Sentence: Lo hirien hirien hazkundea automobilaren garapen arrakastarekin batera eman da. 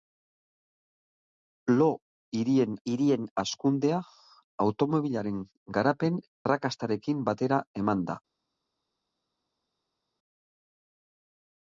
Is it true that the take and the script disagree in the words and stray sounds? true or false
false